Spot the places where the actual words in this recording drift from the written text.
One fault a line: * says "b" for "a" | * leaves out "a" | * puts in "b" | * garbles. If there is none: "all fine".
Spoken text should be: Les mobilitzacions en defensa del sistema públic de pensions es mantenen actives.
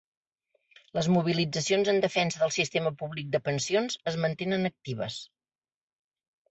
all fine